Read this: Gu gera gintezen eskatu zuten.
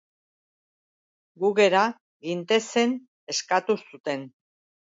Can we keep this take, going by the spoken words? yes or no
yes